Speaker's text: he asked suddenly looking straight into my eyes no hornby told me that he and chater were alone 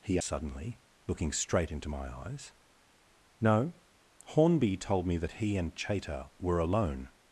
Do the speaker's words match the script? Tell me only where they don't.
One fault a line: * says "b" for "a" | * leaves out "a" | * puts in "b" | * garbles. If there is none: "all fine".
* leaves out "asked"